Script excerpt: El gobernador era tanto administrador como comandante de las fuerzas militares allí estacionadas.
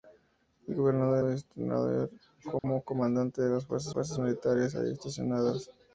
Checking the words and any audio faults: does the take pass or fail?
fail